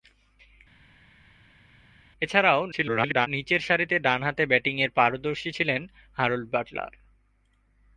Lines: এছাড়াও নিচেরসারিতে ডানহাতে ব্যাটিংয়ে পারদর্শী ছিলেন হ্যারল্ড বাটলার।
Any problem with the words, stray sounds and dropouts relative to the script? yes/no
yes